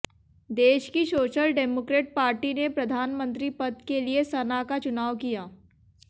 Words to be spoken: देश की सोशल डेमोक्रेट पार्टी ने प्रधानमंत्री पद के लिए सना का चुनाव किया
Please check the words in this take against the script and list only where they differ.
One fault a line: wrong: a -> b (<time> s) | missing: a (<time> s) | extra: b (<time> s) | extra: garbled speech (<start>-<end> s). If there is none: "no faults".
no faults